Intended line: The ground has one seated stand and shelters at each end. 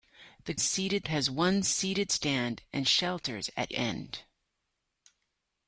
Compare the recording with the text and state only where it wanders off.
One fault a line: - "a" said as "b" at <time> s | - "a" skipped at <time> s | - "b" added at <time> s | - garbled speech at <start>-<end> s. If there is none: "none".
- "ground" said as "seated" at 0.6 s
- "each" skipped at 3.7 s